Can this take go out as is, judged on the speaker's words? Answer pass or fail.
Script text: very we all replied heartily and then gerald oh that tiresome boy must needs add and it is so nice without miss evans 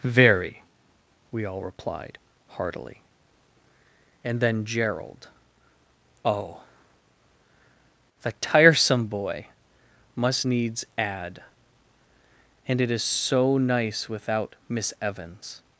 fail